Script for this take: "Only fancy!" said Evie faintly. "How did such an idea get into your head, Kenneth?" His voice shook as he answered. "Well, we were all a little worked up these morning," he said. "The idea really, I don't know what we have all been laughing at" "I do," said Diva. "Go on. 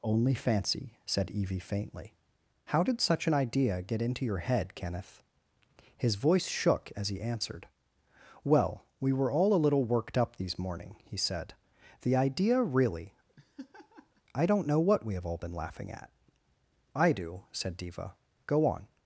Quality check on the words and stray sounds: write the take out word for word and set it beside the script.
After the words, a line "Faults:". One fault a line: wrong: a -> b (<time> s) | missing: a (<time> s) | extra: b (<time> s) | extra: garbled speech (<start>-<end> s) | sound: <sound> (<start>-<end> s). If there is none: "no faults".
"Only fancy!" said Evie faintly. "How did such an idea get into your head, Kenneth?" His voice shook as he answered. "Well, we were all a little worked up these morning," he said. "The idea really, I don't know what we have all been laughing at" "I do," said Diva. "Go on.
Faults:
sound: laugh (13.3-14.2 s)